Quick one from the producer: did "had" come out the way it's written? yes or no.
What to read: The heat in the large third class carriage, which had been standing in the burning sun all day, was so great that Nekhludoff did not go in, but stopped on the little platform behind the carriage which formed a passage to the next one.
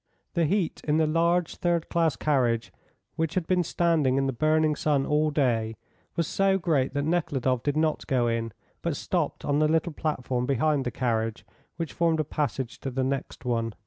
yes